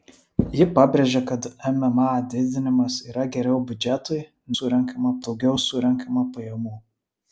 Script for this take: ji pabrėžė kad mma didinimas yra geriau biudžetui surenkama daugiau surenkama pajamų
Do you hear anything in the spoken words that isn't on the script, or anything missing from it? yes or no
no